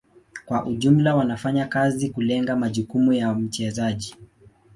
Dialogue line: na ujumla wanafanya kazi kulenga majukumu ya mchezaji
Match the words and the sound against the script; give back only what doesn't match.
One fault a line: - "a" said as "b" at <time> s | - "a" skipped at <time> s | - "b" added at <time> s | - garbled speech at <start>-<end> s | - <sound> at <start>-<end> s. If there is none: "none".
- "na" said as "kwa" at 0.5 s